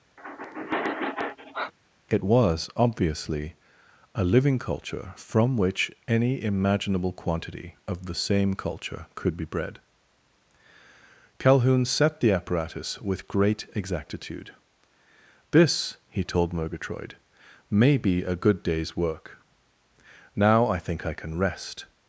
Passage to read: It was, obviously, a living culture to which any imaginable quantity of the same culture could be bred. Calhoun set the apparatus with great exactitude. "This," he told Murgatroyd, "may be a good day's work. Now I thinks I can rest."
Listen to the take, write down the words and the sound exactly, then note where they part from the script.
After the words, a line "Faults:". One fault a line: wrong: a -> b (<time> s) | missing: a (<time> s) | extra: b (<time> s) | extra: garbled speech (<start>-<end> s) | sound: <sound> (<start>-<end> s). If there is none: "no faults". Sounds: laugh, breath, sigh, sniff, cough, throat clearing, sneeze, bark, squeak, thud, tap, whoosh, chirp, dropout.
It was, obviously, a living culture from which any imaginable quantity of the same culture could be bred. Calhoun set the apparatus with great exactitude. "This," he told Murgatroyd, "may be a good day's work. Now I think I can rest."
Faults:
sound: sigh (0.2-1.7 s)
wrong: to -> from (5.2 s)
wrong: thinks -> think (20.8 s)